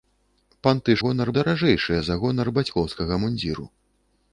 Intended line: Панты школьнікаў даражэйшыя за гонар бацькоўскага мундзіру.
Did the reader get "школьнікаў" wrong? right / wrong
wrong